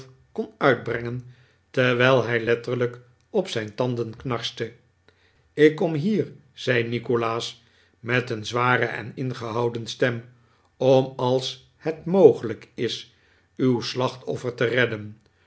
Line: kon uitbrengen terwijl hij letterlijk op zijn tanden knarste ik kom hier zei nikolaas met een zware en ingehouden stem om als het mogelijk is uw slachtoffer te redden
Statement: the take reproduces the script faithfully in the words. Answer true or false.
true